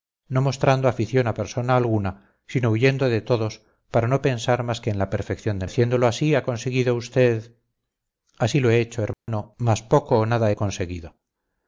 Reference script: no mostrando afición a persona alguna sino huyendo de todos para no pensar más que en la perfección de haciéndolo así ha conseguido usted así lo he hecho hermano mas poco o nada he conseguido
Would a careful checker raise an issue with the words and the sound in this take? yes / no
yes